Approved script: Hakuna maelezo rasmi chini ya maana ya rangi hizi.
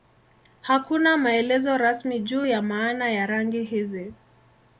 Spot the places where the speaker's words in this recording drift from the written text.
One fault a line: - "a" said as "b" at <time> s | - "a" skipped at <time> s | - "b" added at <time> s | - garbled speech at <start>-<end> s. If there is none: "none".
- "chini" said as "juu" at 2.2 s